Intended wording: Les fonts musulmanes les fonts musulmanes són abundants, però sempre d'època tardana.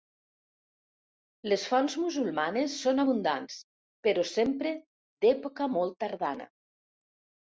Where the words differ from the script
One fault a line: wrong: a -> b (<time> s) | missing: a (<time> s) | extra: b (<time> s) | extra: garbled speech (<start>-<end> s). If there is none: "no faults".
missing: les fonts musulmanes (2.8 s)
extra: molt (5.7 s)